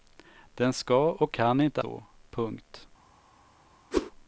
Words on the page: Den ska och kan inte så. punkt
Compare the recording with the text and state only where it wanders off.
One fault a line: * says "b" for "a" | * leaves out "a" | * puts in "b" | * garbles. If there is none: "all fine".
all fine